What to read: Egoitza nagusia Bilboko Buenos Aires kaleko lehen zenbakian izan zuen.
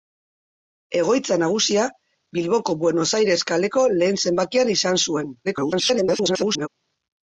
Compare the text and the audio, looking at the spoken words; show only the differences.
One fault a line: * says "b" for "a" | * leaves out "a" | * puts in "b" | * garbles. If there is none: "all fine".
* garbles